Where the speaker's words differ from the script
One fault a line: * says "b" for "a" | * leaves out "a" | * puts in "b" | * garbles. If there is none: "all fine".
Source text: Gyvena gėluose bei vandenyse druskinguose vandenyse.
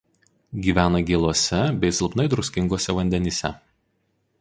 * says "silpnai" for "vandenyse"